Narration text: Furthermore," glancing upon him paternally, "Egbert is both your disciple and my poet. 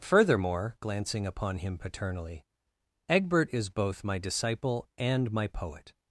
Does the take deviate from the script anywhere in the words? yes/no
yes